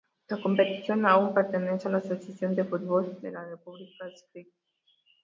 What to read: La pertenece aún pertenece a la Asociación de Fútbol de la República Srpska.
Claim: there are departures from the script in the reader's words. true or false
true